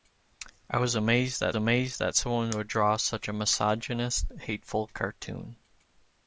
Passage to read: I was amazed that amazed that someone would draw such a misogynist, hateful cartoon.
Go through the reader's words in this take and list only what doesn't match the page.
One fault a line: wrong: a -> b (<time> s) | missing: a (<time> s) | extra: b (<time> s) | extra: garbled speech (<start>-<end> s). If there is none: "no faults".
no faults